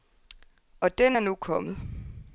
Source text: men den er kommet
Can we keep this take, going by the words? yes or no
no